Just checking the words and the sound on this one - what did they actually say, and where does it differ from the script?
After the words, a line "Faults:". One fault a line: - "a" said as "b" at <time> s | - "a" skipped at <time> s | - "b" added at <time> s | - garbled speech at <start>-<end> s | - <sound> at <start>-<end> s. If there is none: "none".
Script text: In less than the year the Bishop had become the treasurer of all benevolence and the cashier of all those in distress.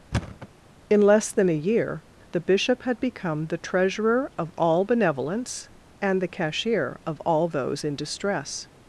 In less than a year the Bishop had become the treasurer of all benevolence and the cashier of all those in distress.
Faults:
- thud at 0.1-0.5 s
- "the" said as "a" at 1.5 s